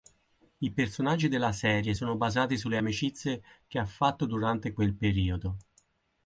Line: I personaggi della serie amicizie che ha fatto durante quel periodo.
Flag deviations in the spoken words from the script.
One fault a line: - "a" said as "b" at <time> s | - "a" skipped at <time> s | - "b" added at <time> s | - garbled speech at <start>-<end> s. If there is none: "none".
- "sono basati sulle" added at 1.9 s